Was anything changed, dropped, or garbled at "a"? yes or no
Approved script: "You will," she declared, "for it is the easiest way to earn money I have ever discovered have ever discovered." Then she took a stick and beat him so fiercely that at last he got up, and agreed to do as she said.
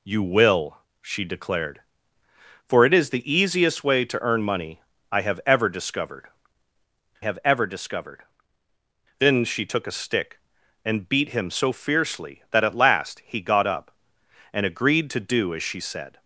no